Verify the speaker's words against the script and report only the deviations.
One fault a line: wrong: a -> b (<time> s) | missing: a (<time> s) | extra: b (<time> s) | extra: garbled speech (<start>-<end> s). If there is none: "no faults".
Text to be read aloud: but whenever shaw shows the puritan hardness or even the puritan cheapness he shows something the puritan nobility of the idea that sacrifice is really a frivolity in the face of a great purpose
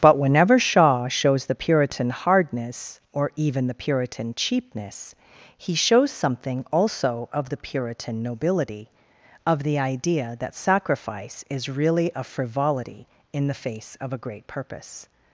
extra: also of (6.7 s)